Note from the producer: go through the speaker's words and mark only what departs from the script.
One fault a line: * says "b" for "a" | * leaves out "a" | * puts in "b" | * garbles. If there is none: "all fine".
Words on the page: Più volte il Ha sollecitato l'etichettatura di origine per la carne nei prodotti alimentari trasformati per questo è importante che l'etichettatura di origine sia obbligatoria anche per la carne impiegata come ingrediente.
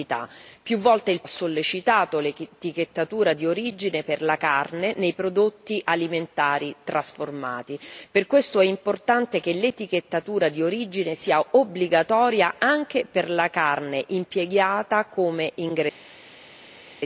all fine